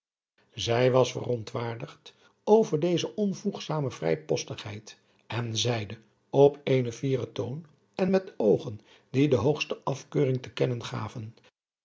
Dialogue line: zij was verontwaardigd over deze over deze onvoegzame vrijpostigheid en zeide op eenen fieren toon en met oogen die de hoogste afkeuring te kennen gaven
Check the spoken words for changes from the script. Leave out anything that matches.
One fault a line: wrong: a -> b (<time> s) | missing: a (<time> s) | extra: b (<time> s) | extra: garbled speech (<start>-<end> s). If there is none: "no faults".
missing: over deze (3.1 s)